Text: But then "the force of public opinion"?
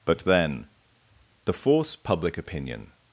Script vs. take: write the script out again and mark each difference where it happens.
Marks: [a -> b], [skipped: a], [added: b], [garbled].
But then "the force [skipped: of] public opinion"?